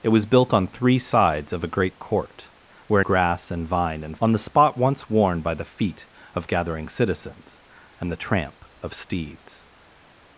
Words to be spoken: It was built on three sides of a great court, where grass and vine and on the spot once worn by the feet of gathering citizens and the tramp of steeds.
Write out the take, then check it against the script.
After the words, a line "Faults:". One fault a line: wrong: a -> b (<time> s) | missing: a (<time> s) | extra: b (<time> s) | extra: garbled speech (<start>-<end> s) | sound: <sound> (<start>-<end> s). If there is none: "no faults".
It was built on three sides of a great court, where grass and vine and on the spot once worn by the feet of gathering citizens and the tramp of steeds.
Faults:
no faults